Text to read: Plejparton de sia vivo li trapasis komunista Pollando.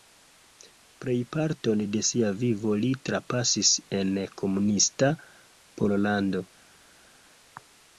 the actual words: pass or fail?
fail